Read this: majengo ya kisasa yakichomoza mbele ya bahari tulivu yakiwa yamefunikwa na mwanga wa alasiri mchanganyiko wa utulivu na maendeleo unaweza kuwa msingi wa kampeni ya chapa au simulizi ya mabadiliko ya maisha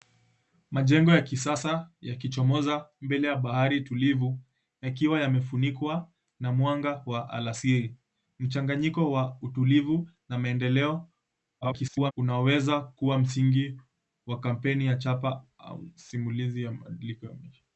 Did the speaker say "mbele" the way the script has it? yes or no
yes